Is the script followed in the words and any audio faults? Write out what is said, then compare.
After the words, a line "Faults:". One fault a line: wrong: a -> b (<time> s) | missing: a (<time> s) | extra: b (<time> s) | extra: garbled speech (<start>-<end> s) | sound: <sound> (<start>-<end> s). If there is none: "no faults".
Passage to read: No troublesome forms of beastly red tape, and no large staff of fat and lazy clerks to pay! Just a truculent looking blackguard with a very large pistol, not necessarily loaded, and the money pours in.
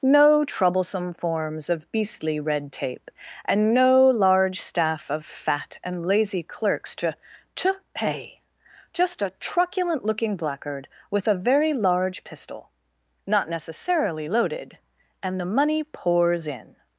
No troublesome forms of beastly red tape, and no large staff of fat and lazy clerks to to pay! Just a truculent looking blackguard with a very large pistol, not necessarily loaded, and the money pours in.
Faults:
extra: to (7.6 s)